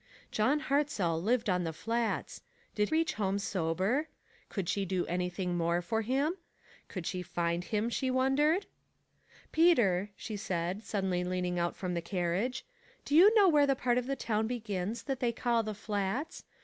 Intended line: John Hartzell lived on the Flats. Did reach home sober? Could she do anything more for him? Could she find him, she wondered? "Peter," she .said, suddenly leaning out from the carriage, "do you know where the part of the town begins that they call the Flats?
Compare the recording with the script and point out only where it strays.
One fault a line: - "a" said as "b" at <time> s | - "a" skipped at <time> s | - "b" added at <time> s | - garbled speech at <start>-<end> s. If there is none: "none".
none